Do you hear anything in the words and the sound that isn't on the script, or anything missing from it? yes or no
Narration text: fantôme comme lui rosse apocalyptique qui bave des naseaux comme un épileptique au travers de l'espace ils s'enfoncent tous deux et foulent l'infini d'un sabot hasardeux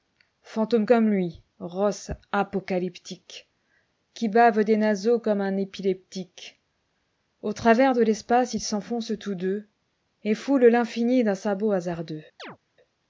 yes